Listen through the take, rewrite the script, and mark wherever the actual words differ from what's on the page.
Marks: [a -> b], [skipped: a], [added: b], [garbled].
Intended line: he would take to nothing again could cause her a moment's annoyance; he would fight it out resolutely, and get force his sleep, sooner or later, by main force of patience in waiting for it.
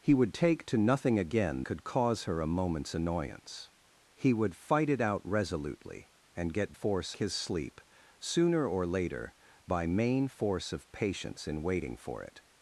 he would take to nothing again could cause her a moment's annoyance; he would fight it out resolutely, and get force his sleep, sooner or later, by main force of patience in waiting for it.